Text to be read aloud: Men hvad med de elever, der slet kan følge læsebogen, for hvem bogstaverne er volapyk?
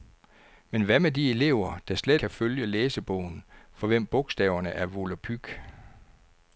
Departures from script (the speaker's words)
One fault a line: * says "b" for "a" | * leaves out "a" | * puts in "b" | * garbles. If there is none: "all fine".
all fine